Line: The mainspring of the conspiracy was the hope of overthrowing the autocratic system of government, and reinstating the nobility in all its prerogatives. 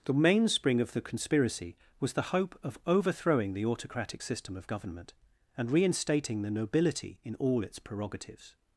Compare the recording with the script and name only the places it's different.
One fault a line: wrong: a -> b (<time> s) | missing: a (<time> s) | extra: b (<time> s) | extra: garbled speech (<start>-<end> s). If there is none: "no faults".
no faults